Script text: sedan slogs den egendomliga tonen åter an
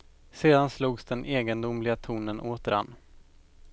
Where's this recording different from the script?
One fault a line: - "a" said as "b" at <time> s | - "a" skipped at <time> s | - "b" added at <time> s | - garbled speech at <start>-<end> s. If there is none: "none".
none